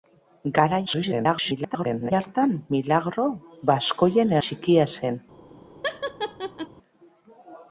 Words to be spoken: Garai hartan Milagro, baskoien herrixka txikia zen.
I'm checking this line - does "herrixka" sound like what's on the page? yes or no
no